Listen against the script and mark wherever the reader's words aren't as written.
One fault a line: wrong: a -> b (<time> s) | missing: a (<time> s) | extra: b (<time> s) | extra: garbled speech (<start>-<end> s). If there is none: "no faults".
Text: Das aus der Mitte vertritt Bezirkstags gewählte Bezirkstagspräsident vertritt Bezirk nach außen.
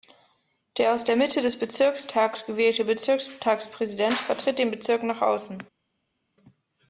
wrong: Das -> Der (0.8 s)
wrong: vertritt -> des (1.4 s)
extra: den (4.6 s)